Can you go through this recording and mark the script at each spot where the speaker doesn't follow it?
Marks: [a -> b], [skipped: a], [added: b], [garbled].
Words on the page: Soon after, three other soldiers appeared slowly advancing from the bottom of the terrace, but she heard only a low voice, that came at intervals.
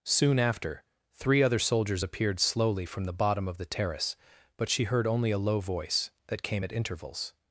Soon after, three other soldiers appeared slowly [skipped: advancing] from the bottom of the terrace, but she heard only a low voice, that came at intervals.